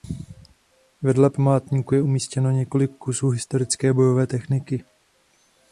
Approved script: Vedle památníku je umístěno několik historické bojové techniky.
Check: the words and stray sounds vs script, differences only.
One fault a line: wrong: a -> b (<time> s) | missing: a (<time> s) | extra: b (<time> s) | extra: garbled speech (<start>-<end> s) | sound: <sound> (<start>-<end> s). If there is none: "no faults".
extra: kusů (3.0 s)